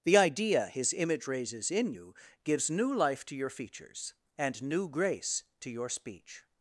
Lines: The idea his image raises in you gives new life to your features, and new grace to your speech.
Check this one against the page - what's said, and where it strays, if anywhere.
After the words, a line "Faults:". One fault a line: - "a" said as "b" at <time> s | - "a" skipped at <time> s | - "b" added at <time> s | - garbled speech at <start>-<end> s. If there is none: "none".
The idea his image raises in you gives new life to your features, and new grace to your speech.
Faults:
none